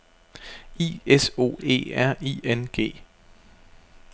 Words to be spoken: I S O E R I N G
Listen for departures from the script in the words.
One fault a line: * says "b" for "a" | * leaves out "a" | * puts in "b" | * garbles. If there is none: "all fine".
all fine